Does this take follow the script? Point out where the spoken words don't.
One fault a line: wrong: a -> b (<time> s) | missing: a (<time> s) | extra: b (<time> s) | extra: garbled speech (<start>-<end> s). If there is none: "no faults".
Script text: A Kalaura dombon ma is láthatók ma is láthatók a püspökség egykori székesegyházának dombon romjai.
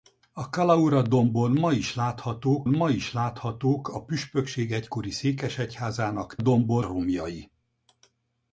no faults